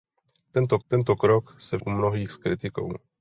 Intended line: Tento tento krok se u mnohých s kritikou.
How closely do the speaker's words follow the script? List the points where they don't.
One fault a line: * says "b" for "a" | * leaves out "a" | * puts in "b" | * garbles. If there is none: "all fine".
all fine